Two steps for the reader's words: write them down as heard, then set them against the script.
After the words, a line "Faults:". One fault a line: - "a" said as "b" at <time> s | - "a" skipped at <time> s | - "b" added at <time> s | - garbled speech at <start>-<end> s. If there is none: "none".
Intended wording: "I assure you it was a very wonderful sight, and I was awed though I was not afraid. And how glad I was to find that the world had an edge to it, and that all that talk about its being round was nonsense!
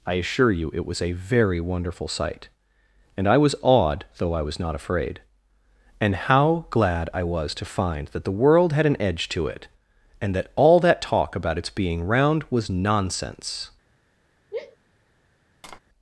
"I assure you it was a very wonderful sight, and I was awed though I was not afraid. And how glad I was to find that the world had an edge to it, and that all that talk about its being round was nonsense!
Faults:
none